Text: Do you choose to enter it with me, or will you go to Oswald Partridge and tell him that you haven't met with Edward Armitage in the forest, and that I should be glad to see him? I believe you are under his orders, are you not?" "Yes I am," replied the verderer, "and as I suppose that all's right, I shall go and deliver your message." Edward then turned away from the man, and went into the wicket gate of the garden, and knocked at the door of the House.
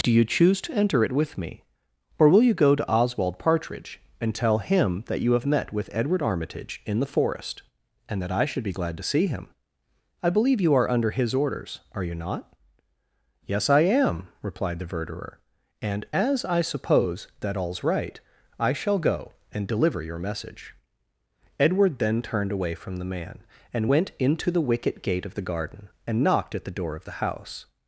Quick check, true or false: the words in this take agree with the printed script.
false